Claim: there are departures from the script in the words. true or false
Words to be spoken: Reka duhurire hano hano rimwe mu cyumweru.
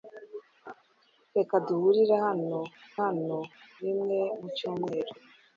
false